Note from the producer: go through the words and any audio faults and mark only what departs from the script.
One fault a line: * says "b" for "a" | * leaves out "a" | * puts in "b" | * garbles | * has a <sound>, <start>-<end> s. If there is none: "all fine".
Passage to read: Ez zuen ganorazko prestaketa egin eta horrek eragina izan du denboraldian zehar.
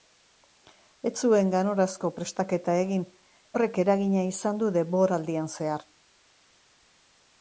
* leaves out "eta"